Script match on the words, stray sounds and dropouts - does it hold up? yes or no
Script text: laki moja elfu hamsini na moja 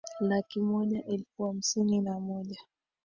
yes